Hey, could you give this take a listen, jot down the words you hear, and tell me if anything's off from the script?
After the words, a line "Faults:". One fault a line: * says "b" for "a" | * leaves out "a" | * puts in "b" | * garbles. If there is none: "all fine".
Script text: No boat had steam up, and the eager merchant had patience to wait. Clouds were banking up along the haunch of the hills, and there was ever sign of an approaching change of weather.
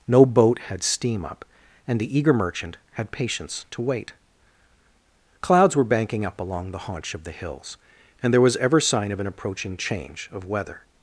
No boat had steam up, and the eager merchant had patience to wait. Clouds were banking up along the haunch of the hills, and there was ever sign of an approaching change of weather.
Faults:
all fine